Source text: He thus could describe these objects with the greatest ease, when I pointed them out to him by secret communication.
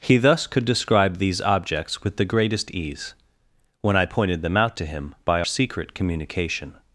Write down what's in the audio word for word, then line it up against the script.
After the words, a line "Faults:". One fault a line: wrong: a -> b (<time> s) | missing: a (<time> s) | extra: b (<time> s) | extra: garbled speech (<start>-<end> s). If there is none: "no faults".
He thus could describe these objects with the greatest ease, when I pointed them out to him by secret communication.
Faults:
no faults